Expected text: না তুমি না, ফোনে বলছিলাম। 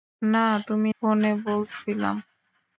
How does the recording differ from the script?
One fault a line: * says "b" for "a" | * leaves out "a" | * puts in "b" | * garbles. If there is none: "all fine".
* leaves out "না"